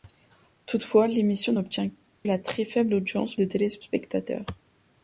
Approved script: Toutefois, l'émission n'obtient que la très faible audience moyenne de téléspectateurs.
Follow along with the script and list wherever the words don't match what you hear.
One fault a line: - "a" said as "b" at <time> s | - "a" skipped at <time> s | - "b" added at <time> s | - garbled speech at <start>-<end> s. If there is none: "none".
- "que" skipped at 1.9 s
- "moyenne" skipped at 3.4 s